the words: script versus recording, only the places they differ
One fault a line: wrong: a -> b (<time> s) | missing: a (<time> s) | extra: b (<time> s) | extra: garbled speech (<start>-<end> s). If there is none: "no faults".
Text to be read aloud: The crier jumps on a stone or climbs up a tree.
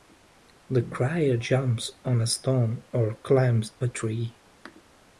missing: up (3.7 s)